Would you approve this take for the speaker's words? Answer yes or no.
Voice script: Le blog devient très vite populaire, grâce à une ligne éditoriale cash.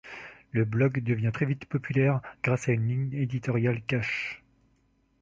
yes